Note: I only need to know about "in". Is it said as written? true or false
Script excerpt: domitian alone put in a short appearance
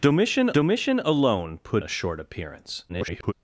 false